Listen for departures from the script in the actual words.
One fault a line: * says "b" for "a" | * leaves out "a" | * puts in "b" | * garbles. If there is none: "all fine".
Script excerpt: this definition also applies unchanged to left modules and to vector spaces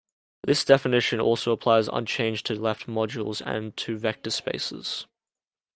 all fine